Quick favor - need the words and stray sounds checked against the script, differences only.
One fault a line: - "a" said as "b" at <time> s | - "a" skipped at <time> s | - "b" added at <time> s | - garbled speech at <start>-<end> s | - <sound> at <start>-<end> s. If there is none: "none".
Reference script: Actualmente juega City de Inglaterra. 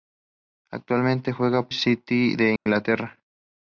- dropout at 2.6-2.7 s